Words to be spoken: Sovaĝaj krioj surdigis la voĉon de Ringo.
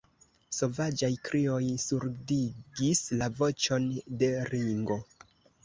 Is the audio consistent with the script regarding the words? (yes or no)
yes